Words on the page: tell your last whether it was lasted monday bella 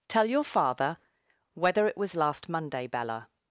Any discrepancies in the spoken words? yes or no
yes